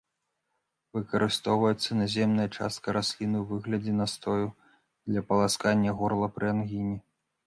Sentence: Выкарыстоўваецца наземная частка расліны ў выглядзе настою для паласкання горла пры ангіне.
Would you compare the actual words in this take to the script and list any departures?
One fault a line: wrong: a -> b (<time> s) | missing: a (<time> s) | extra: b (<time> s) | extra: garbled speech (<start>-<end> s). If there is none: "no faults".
no faults